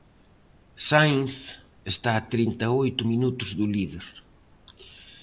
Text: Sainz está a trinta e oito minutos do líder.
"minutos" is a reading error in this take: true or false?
false